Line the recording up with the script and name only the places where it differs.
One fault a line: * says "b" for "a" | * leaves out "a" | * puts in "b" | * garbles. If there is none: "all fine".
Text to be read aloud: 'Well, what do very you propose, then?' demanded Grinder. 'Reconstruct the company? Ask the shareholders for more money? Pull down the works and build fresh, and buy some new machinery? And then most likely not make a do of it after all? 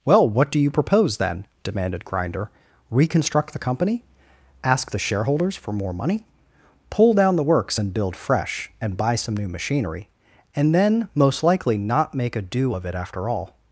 * leaves out "very"